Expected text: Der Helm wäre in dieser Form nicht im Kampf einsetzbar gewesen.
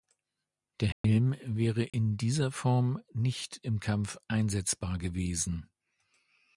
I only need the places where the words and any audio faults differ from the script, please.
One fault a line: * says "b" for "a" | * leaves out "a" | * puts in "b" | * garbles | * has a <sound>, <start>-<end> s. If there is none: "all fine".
* has a dropout, 0.9-1.0 s
* has a dropout, 1.9-1.9 s